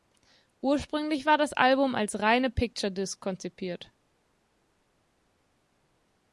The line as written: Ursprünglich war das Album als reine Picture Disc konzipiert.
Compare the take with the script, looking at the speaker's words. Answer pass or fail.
pass